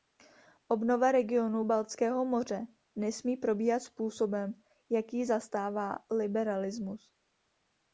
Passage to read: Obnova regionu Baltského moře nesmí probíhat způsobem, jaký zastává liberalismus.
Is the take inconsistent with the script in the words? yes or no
no